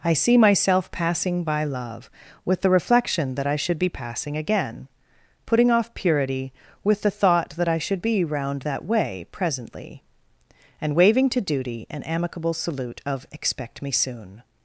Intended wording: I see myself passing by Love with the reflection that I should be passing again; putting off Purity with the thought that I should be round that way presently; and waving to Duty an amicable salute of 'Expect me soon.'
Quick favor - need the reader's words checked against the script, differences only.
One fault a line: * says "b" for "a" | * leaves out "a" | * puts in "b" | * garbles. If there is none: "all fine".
all fine